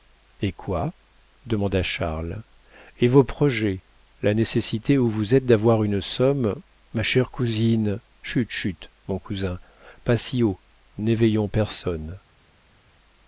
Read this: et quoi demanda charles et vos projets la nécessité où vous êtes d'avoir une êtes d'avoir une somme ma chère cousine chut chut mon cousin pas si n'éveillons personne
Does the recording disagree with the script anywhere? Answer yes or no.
yes